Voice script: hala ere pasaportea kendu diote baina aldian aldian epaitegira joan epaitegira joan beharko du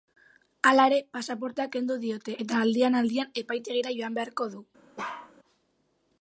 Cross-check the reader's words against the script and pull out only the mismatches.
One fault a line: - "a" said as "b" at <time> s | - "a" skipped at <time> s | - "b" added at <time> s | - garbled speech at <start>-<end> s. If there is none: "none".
- "baina" said as "eta" at 2.5 s
- "epaitegira joan" skipped at 4.2 s